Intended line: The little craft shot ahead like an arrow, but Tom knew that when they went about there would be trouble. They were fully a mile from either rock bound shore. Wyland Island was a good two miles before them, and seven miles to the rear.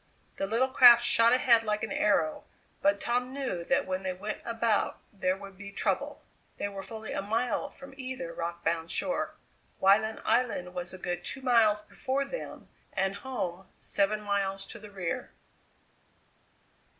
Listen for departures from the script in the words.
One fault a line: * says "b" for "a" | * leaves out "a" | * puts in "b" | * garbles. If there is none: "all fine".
* puts in "home"